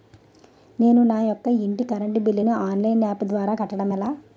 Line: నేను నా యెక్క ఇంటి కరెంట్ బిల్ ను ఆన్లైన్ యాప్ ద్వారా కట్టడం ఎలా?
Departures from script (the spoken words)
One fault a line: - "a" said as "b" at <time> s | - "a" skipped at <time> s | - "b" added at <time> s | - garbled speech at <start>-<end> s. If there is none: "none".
none